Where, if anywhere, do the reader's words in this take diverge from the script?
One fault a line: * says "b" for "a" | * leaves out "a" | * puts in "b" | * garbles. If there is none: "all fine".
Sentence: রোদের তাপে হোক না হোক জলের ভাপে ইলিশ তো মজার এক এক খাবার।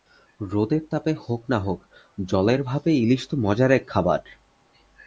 * leaves out "এক"